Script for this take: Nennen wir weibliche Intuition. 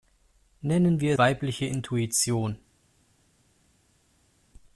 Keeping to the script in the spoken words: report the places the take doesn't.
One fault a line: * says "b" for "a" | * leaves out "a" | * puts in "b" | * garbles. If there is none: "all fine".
all fine